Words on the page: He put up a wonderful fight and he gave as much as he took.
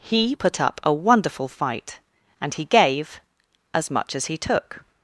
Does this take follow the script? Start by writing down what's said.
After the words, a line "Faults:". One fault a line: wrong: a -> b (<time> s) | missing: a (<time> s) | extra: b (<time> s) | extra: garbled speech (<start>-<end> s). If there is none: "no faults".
He put up a wonderful fight and he gave as much as he took.
Faults:
no faults